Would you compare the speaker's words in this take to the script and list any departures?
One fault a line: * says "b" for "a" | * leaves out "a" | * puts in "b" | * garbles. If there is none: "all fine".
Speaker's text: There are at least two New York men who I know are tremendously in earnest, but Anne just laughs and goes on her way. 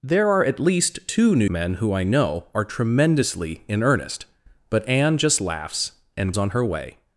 * leaves out "York"
* leaves out "goes"